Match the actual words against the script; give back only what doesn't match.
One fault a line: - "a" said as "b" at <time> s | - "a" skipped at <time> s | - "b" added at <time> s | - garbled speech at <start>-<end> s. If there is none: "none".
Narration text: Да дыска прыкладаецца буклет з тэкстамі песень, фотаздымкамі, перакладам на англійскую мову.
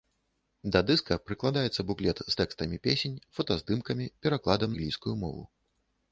- "на" skipped at 4.7 s